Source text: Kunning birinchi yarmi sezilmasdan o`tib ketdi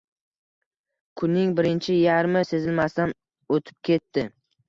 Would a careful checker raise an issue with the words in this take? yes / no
no